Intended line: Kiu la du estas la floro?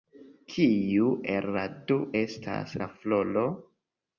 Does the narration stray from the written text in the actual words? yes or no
yes